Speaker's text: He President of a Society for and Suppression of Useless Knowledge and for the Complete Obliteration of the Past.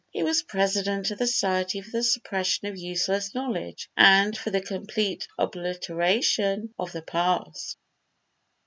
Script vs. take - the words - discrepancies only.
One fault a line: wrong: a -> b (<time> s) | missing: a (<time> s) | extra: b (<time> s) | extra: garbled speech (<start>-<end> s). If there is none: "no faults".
extra: was (0.2 s)
wrong: a -> the (1.2 s)
wrong: and -> the (1.9 s)